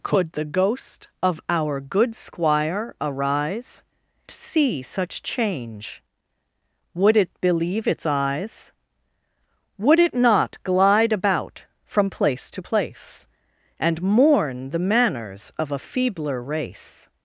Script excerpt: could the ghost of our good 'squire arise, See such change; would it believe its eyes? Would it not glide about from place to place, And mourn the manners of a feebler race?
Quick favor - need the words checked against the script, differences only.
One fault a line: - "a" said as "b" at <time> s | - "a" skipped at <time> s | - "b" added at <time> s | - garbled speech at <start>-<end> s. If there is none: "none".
none